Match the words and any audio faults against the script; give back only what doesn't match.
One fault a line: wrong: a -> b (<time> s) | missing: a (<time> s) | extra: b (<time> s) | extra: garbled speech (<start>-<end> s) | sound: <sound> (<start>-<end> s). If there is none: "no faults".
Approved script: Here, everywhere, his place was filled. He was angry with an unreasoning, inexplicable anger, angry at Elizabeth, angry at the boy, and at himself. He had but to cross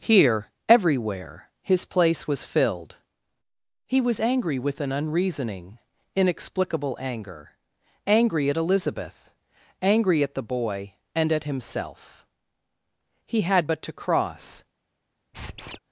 sound: squeak (15.3-15.8 s)